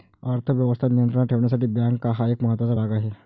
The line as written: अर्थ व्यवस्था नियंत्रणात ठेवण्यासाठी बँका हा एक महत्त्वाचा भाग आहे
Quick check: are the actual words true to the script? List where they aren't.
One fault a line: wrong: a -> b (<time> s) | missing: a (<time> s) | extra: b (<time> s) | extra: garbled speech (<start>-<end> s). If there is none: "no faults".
no faults